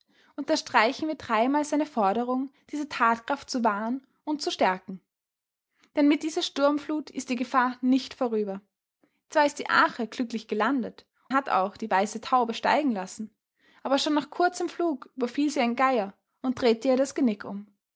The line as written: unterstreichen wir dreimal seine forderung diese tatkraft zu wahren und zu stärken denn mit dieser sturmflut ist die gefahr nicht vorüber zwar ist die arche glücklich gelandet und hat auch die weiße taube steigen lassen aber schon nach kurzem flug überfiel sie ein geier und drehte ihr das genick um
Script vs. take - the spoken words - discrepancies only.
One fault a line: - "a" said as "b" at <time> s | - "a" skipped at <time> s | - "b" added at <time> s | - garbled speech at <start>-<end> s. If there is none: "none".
none